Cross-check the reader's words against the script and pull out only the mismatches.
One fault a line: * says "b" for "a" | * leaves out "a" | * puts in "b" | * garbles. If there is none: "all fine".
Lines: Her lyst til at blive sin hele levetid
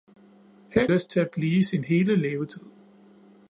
all fine